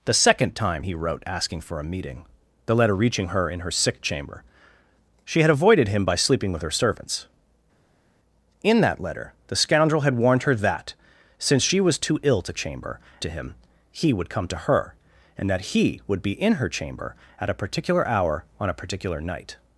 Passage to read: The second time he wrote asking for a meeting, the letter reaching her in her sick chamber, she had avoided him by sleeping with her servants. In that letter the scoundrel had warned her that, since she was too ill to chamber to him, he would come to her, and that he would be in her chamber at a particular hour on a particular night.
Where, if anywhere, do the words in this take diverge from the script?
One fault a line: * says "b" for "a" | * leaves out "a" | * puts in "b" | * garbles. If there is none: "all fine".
all fine